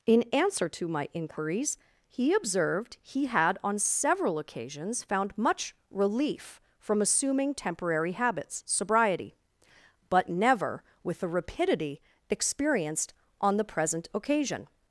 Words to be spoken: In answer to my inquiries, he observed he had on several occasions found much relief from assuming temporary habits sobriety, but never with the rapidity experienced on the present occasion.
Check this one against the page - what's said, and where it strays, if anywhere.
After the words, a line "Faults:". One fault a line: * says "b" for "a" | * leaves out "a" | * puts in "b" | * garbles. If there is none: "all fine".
In answer to my inquiries, he observed he had on several occasions found much relief from assuming temporary habits sobriety, but never with the rapidity experienced on the present occasion.
Faults:
all fine